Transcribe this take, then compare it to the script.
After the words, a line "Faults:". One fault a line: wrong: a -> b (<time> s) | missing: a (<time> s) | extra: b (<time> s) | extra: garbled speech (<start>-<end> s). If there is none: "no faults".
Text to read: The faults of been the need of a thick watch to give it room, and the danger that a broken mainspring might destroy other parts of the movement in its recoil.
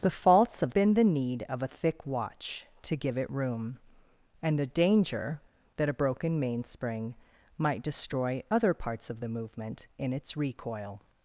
The faults of been the need of a thick watch to give it room, and the danger that a broken mainspring might destroy other parts of the movement in its recoil.
Faults:
no faults